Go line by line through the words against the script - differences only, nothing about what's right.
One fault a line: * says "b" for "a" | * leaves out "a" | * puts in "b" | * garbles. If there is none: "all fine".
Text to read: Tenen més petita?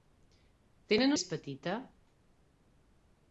all fine